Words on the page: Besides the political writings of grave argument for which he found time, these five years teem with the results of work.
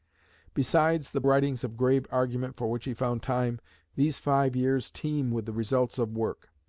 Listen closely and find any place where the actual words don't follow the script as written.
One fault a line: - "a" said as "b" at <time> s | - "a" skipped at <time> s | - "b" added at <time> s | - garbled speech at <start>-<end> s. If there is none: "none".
- "political" skipped at 1.2 s